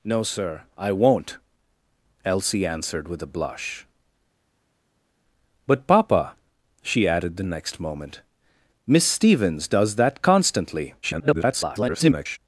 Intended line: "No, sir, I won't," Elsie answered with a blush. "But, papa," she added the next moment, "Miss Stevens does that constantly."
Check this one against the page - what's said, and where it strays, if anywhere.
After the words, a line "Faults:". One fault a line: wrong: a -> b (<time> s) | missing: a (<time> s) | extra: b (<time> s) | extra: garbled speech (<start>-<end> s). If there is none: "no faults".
"No, sir, I won't," Elsie answered with a blush. "But, papa," she added the next moment, "Miss Stevens does that constantly." [garbled]
Faults:
extra: garbled speech (11.0-12.4 s)